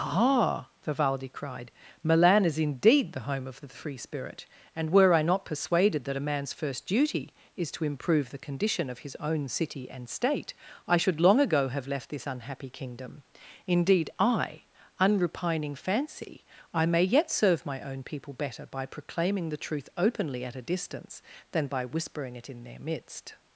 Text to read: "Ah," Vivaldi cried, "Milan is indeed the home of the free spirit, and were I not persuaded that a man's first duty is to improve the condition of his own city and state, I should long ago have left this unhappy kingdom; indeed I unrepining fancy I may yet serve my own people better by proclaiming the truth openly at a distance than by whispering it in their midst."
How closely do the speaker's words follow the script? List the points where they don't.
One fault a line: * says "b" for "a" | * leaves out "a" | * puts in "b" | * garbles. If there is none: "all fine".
all fine